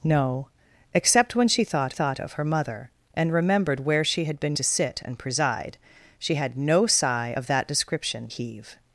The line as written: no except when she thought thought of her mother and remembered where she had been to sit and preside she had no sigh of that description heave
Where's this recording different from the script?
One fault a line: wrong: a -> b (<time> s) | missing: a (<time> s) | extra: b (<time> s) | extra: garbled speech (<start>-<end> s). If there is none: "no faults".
no faults